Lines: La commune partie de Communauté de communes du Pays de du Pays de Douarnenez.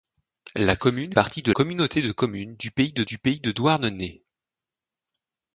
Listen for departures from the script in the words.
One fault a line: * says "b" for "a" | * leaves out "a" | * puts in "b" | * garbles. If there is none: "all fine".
all fine